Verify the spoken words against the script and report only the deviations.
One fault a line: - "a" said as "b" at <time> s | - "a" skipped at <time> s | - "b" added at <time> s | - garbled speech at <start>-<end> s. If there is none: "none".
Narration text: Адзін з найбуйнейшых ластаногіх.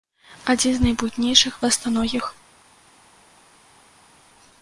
none